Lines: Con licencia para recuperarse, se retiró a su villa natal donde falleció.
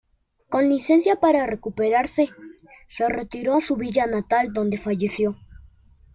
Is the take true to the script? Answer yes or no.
yes